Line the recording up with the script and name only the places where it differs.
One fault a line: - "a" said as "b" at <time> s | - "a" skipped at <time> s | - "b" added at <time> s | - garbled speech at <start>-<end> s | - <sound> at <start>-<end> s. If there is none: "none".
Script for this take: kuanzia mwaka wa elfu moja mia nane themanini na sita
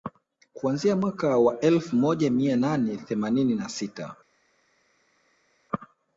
none